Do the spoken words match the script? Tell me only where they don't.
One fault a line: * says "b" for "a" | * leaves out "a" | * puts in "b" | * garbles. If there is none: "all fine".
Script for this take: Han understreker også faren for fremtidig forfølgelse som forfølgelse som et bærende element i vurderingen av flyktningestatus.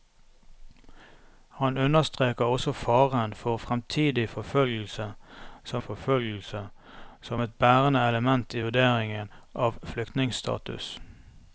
all fine